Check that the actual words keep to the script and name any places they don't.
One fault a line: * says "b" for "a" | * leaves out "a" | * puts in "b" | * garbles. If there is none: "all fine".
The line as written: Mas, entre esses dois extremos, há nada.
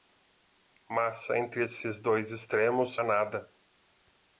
all fine